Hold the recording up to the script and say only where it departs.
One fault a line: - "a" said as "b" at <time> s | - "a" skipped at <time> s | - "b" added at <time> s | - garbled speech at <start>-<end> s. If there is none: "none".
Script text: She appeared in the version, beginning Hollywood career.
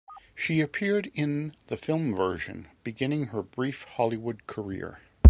- "film" added at 1.7 s
- "her brief" added at 3.2 s